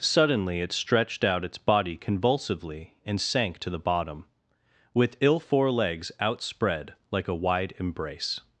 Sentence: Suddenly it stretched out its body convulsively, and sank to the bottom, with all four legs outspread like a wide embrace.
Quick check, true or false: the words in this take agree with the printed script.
false